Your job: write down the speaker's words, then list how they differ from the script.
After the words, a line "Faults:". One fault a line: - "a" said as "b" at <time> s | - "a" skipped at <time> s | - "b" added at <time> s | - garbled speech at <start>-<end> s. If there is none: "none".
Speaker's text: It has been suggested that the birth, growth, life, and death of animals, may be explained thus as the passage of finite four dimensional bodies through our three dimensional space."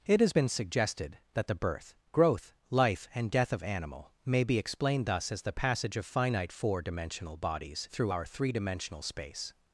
It has been suggested that the birth, growth, life, and death of animal, may be explained thus as the passage of finite four dimensional bodies through our three dimensional space."
Faults:
- "animals" said as "animal" at 3.6 s